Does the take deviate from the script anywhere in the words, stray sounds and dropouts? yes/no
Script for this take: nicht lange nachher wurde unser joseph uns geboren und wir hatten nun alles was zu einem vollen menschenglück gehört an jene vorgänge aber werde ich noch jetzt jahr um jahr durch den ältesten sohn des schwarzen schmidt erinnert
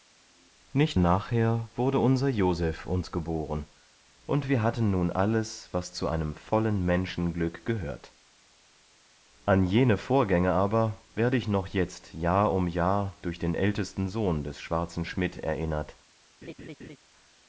yes